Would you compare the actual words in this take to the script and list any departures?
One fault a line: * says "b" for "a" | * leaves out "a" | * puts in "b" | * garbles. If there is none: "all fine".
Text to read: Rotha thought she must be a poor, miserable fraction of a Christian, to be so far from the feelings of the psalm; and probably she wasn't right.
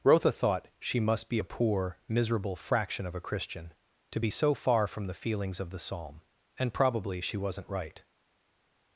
all fine